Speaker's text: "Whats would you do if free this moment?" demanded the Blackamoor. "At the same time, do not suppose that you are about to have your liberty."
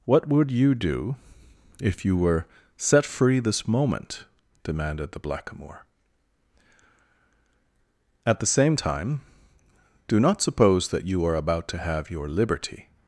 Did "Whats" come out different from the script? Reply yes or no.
yes